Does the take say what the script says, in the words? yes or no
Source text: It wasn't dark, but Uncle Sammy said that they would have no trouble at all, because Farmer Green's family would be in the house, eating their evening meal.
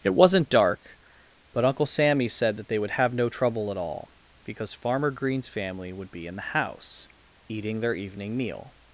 yes